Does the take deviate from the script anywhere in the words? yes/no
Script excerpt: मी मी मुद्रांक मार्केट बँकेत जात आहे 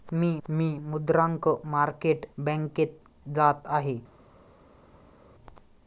no